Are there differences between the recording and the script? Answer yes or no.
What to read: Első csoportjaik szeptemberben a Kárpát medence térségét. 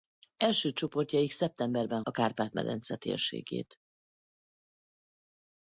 no